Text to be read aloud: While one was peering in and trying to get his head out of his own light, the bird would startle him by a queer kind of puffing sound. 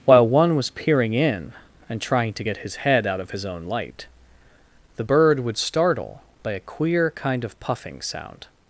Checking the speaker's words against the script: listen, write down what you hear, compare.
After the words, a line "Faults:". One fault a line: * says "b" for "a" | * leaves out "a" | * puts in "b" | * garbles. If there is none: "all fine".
While one was peering in and trying to get his head out of his own light, the bird would startle by a queer kind of puffing sound.
Faults:
* leaves out "him"